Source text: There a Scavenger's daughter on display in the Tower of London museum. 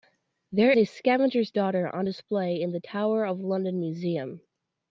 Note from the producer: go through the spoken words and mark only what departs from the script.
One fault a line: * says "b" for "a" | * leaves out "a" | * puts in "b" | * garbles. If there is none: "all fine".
all fine